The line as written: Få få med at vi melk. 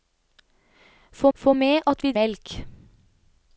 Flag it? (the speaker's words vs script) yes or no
no